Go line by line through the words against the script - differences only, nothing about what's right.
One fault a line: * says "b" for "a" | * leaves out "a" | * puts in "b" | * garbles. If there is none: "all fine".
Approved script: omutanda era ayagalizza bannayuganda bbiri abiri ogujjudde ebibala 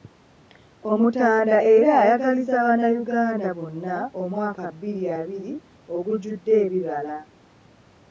* puts in "bonna omwaka"